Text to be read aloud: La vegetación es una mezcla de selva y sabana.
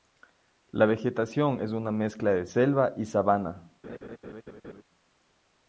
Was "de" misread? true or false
false